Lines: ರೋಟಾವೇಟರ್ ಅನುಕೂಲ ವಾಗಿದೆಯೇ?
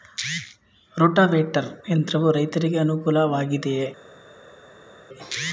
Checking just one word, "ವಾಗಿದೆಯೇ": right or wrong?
right